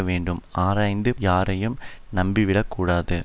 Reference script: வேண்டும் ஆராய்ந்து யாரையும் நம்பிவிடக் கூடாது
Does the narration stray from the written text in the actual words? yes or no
no